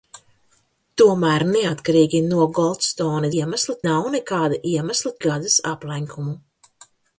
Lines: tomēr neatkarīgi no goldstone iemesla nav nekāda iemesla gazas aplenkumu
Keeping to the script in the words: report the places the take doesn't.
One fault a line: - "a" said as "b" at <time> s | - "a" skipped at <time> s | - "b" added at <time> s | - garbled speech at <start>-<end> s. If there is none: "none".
none